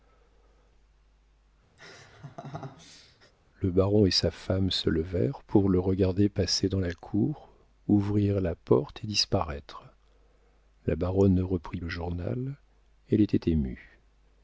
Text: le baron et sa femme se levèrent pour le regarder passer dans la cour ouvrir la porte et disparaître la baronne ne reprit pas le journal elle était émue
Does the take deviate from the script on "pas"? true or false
true